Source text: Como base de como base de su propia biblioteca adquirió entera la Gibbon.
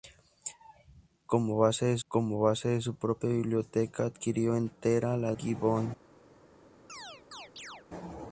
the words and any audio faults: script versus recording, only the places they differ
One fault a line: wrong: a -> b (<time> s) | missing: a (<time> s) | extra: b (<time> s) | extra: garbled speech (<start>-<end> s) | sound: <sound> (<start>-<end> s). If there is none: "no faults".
sound: chirp (6.9-7.9 s)